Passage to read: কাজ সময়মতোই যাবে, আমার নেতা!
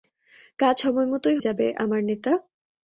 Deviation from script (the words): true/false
false